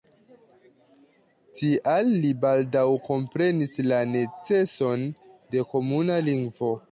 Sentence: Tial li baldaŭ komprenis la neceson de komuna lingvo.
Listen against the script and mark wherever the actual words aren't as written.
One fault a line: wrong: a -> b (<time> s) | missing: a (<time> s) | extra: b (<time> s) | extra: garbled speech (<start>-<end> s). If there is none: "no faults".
no faults